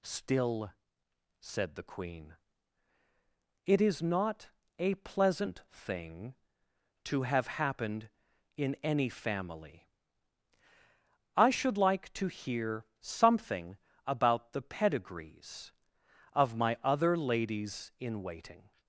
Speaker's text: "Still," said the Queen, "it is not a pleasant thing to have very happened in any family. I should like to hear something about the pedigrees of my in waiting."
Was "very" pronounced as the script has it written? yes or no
no